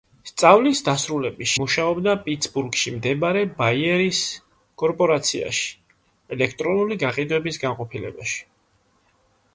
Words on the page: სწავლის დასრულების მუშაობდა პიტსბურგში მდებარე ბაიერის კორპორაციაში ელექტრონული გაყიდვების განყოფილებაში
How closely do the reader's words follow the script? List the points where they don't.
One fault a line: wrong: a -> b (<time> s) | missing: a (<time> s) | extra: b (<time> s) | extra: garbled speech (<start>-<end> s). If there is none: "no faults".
no faults